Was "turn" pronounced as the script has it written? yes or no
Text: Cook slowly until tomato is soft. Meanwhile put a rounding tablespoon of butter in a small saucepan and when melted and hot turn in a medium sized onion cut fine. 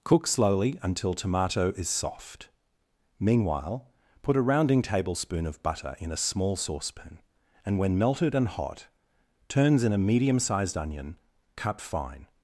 no